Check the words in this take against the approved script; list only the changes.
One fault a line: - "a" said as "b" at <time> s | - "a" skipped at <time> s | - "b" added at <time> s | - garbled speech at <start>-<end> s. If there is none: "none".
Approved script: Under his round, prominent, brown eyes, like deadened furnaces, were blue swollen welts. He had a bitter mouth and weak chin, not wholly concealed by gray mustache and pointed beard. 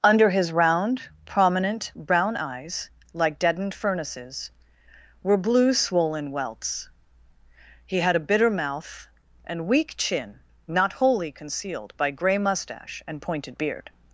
none